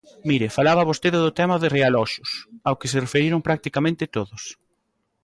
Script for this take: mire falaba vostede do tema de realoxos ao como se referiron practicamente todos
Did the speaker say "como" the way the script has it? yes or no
no